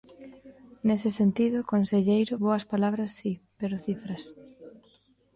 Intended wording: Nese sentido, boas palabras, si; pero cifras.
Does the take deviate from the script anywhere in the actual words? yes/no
yes